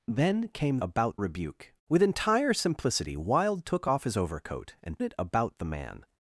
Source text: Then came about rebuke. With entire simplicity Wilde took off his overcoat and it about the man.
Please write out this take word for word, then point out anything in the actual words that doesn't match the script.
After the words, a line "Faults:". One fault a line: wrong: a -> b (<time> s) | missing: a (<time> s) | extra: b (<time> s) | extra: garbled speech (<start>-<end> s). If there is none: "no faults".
Then came about rebuke. With entire simplicity Wilde took off his overcoat and it about the man.
Faults:
no faults